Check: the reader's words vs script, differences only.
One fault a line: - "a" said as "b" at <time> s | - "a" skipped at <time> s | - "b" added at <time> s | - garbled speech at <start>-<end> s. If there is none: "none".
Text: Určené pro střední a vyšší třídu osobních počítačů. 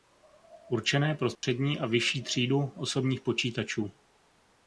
none